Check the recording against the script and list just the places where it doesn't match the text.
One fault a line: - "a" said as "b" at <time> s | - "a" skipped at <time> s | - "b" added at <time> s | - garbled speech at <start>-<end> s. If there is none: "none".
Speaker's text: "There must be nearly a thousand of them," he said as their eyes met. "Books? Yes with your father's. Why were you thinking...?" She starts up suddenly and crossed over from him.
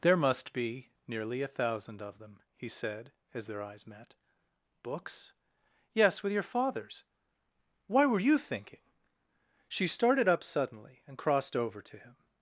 - "starts" said as "started" at 9.9 s
- "from" said as "to" at 11.8 s